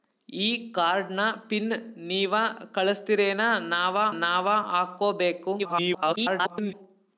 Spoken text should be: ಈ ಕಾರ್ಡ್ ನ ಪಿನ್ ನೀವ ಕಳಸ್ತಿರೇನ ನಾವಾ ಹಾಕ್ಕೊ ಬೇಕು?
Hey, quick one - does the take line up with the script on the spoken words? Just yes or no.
no